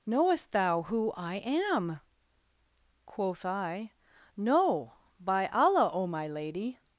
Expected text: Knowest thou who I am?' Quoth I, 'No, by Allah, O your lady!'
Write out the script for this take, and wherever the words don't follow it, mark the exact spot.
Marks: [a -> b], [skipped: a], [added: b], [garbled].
Knowest thou who I am?' Quoth I, 'No, by Allah, O [your -> my] lady!'